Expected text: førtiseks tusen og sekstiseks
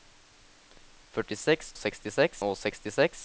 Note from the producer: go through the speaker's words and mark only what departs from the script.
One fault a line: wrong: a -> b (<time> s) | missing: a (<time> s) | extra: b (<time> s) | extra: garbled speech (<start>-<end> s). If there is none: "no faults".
wrong: tusen -> sekstiseks (1.8 s)